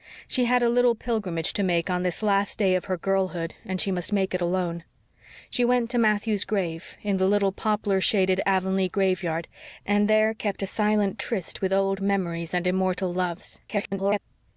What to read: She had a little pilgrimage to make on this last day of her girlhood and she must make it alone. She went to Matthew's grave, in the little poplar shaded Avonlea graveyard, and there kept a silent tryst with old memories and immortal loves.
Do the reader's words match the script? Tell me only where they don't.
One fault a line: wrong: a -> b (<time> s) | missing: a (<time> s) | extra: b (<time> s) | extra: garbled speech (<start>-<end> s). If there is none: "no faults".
extra: garbled speech (13.7-14.2 s)